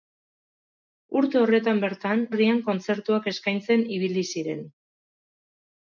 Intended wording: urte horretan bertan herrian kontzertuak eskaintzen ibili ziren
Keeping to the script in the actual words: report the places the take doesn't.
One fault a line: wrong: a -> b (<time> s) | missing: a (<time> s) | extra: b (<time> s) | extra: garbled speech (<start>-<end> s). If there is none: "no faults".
no faults